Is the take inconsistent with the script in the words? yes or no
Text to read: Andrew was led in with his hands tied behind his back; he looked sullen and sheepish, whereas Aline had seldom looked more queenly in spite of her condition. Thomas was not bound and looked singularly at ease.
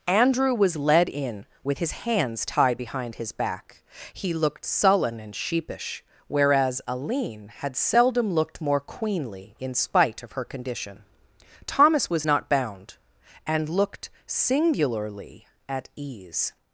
no